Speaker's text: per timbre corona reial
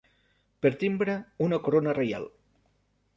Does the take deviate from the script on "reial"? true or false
false